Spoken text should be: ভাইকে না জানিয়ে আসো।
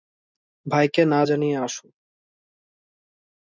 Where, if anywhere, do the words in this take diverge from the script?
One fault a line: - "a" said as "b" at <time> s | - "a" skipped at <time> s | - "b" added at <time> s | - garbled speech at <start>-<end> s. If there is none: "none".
none